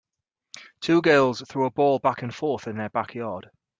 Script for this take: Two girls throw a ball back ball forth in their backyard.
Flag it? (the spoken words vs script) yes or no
yes